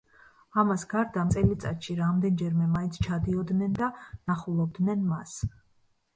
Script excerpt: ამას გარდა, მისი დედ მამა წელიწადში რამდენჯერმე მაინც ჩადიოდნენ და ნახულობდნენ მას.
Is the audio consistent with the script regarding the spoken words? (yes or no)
no